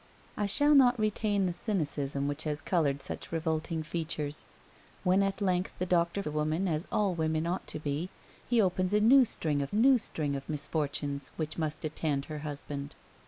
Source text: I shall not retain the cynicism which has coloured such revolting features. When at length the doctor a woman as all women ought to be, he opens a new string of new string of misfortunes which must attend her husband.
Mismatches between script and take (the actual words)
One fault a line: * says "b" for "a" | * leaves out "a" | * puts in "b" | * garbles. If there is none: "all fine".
all fine